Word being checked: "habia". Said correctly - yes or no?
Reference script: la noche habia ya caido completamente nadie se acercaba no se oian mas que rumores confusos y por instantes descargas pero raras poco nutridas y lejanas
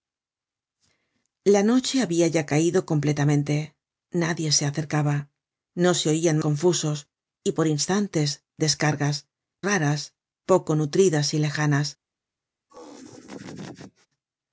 yes